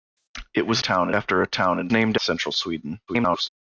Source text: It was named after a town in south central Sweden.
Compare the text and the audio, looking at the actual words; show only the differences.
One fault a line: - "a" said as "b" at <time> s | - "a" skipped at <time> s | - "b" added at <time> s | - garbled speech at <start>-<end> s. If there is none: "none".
- "named" said as "town" at 0.8 s
- "south" said as "named" at 1.9 s
- garbled speech at 3.1-3.5 s